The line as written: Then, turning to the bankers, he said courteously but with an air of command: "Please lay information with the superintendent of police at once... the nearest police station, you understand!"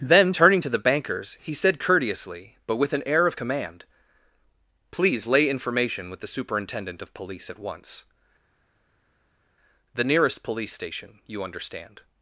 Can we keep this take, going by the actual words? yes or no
yes